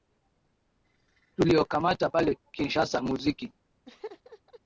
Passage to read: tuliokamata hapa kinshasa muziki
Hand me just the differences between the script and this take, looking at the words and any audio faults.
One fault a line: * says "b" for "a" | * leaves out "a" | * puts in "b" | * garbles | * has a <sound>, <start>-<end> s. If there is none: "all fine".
* says "pale" for "hapa"
* has a laugh, 3.9-4.6 s